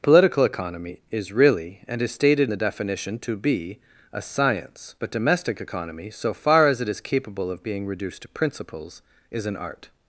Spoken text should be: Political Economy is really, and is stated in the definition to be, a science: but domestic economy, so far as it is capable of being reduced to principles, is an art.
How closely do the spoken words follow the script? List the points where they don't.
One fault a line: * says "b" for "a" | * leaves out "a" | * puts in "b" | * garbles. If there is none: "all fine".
* leaves out "in"